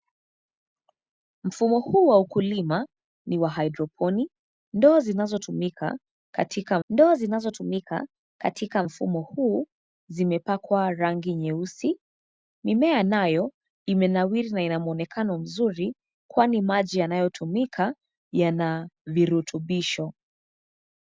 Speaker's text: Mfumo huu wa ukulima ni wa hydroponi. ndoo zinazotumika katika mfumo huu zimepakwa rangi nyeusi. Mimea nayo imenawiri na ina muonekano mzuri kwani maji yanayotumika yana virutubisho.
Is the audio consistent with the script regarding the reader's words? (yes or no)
no